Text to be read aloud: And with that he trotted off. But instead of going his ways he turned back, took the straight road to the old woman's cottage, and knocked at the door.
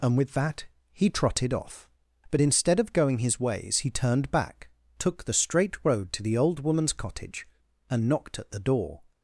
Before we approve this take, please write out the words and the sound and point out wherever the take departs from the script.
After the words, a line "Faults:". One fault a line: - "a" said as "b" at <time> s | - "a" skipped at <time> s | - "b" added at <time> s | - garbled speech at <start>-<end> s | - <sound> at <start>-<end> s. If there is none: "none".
And with that he trotted off. But instead of going his ways he turned back, took the straight road to the old woman's cottage, and knocked at the door.
Faults:
none